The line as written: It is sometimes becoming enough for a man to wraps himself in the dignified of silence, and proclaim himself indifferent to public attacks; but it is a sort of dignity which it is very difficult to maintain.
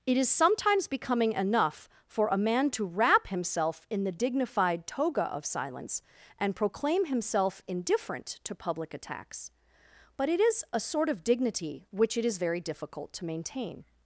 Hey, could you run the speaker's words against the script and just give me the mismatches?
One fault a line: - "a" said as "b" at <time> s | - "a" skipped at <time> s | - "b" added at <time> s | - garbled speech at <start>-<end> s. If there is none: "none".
- "wraps" said as "wrap" at 2.9 s
- "toga" added at 4.9 s